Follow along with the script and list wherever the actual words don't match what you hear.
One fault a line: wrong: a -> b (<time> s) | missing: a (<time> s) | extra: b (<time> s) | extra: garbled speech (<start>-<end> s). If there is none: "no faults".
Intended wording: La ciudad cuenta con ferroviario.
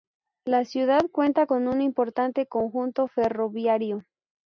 extra: un importante conjunto (1.7 s)